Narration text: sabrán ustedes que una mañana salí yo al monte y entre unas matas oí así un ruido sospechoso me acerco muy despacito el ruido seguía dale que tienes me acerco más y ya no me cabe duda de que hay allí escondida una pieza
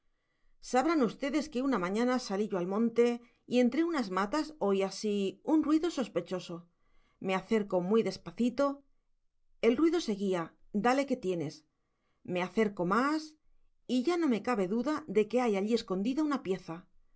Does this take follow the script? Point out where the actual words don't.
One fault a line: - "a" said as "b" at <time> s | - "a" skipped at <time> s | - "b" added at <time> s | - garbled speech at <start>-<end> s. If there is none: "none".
none